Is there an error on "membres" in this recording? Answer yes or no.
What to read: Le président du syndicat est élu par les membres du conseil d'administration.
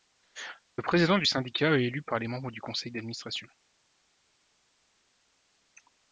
no